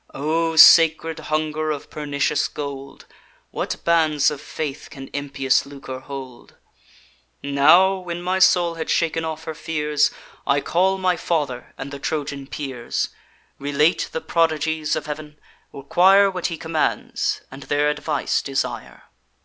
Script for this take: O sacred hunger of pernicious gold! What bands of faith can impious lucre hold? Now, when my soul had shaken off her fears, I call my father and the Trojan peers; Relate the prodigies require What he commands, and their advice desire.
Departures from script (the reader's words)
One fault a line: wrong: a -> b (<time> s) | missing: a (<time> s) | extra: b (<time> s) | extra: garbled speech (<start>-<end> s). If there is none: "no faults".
extra: of Heav'n (15.0 s)